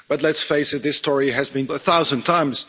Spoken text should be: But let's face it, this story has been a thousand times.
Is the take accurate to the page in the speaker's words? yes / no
yes